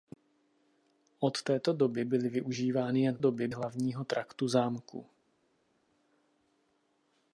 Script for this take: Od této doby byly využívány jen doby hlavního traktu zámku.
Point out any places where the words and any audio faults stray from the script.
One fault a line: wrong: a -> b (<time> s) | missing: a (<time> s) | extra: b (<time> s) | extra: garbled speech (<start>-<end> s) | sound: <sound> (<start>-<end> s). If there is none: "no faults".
no faults